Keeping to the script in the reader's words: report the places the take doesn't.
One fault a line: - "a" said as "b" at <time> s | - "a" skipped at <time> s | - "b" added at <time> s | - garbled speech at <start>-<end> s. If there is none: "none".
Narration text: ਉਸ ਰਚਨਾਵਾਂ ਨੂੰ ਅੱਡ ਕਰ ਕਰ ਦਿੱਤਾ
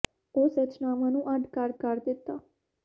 none